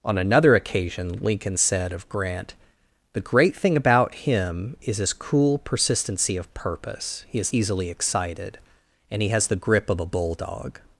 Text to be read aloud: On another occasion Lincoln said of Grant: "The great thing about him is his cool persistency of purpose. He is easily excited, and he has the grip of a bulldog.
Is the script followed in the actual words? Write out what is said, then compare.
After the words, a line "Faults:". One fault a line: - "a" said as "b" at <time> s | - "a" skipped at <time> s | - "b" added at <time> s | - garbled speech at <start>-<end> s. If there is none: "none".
On another occasion Lincoln said of Grant: "The great thing about him is his cool persistency of purpose. He is easily excited, and he has the grip of a bulldog.
Faults:
none